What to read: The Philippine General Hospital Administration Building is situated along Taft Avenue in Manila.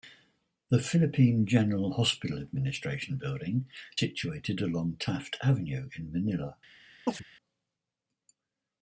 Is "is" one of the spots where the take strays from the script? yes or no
yes